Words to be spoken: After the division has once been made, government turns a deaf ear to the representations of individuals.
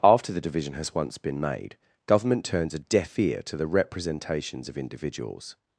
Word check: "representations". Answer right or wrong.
right